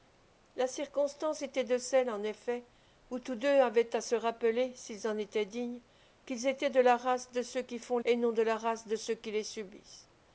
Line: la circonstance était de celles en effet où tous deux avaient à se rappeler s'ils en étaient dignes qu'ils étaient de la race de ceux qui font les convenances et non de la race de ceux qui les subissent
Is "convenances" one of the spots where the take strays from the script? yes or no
yes